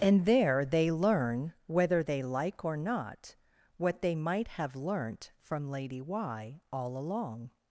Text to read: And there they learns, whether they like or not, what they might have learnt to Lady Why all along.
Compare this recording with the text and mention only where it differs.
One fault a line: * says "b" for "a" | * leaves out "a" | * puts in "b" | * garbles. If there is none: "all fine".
* says "learn" for "learns"
* says "from" for "to"